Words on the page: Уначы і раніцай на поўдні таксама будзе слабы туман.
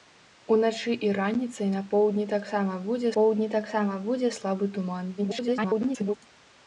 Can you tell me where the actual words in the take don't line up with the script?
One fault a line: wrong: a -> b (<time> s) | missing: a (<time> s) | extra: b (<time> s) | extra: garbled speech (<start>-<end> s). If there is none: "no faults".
extra: поўдні таксама будзе (3.1 s)
extra: garbled speech (5.2-6.1 s)